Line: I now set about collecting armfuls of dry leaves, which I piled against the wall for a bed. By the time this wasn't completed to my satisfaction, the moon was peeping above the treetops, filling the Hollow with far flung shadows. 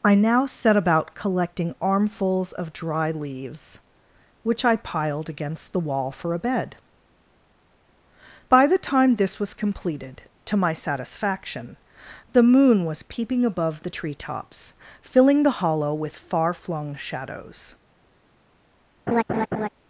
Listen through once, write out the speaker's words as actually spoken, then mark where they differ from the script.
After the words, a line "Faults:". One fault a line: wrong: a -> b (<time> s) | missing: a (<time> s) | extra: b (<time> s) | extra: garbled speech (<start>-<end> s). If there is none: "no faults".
I now set about collecting armfuls of dry leaves, which I piled against the wall for a bed. By the time this was completed to my satisfaction, the moon was peeping above the treetops, filling the Hollow with far flung shadows.
Faults:
wrong: wasn't -> was (9.4 s)